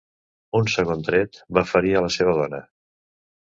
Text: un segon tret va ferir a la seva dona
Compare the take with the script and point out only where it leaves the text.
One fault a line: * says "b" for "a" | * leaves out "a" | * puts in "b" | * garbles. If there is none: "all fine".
all fine